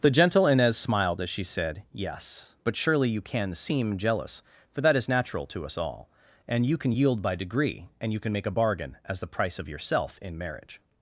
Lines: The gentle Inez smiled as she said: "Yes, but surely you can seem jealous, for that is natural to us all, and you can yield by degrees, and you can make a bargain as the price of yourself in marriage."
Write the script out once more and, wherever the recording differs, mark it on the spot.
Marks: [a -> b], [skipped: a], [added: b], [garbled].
The gentle Inez smiled as she said: "Yes, but surely you can seem jealous, for that is natural to us all, and you can yield by [degrees, -> degree] and you can make a bargain as the price of yourself in marriage."